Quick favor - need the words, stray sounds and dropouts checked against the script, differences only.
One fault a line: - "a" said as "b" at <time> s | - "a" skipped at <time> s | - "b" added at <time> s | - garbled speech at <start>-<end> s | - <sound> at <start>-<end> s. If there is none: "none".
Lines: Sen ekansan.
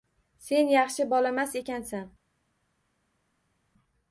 - "yaxshi bolamas" added at 0.8 s